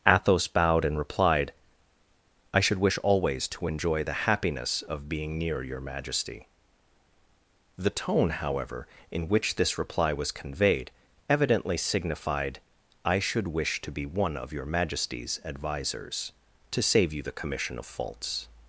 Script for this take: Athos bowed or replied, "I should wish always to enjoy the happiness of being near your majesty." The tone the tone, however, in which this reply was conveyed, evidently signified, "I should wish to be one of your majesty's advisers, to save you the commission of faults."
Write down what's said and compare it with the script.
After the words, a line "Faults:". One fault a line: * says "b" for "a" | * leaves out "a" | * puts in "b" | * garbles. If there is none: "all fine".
Athos bowed and replied, "I should wish always to enjoy the happiness of being near your majesty." The tone, however, in which this reply was conveyed, evidently signified, "I should wish to be one of your majesty's advisers, to save you the commission of faults."
Faults:
* says "and" for "or"
* leaves out "the tone"